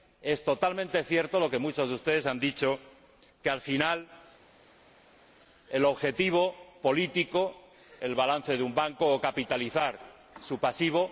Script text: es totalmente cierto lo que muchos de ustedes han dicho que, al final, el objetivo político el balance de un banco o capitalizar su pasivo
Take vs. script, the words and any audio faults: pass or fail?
pass